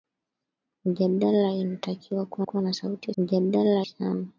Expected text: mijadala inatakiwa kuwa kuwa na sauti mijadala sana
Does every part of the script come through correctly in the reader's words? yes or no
yes